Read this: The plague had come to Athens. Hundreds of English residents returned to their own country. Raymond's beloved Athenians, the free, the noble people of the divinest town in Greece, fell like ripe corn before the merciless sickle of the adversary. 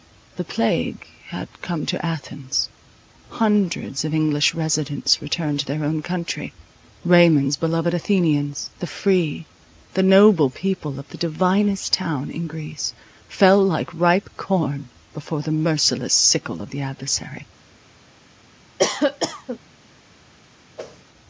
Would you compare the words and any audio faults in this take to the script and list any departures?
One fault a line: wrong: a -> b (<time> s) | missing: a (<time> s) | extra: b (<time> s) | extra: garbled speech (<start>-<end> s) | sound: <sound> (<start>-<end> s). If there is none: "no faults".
sound: cough (18.8-19.6 s)
sound: whoosh (20.8-21.0 s)